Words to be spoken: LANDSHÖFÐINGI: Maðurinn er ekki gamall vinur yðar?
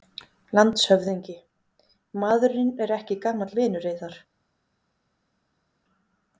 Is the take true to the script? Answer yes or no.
yes